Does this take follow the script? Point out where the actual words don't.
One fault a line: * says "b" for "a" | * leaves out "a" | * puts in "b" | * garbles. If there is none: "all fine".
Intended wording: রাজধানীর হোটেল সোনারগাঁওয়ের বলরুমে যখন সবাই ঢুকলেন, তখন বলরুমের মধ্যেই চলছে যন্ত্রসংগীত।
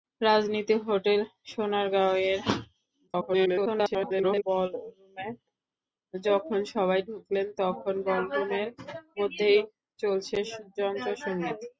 * garbles